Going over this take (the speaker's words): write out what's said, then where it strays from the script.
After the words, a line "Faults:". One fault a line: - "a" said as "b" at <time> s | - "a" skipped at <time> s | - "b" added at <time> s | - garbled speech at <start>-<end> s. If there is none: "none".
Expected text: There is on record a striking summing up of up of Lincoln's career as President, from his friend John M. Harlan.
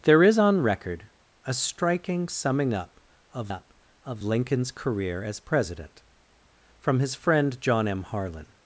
There is on record a striking summing up of up of Lincoln's career as President, from his friend John M. Harlan.
Faults:
none